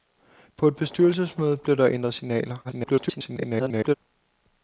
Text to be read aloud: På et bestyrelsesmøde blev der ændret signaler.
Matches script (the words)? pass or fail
fail